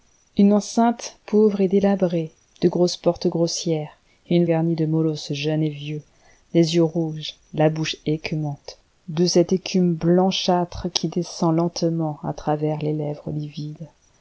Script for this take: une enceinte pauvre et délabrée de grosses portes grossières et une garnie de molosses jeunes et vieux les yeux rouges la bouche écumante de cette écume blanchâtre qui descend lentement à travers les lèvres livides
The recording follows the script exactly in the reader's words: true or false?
true